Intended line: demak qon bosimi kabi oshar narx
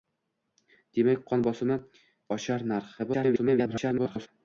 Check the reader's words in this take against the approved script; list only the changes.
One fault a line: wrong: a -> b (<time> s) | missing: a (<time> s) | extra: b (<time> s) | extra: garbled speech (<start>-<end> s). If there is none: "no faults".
missing: kabi (1.8 s)
extra: garbled speech (3.0-4.3 s)